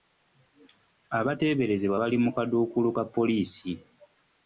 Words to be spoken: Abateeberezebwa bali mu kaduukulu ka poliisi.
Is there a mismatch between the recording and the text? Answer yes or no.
no